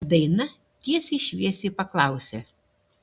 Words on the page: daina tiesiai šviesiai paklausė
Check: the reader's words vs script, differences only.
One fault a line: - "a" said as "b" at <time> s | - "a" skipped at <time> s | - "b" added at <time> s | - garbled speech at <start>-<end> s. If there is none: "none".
none